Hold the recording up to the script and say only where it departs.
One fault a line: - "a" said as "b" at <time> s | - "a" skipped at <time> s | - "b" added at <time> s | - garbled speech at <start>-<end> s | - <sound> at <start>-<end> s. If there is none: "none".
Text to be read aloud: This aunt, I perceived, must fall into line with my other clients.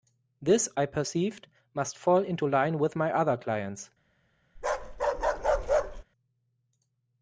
- "aunt" skipped at 0.7 s
- bark at 4.6-6.0 s